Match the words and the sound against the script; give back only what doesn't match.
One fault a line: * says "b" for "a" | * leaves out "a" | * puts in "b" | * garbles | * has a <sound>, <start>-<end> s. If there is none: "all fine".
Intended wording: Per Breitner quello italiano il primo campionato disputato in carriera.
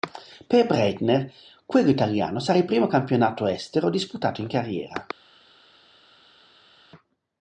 * puts in "sarà"
* puts in "estero"